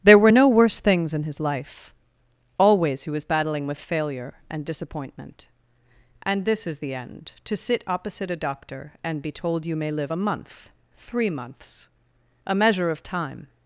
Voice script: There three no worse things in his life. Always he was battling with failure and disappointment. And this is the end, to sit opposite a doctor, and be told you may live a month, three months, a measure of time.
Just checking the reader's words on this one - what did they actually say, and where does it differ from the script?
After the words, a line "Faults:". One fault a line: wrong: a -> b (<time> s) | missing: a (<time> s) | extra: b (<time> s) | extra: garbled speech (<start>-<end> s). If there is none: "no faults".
There were no worse things in his life. Always he was battling with failure and disappointment. And this is the end, to sit opposite a doctor, and be told you may live a month, three months, a measure of time.
Faults:
wrong: three -> were (0.2 s)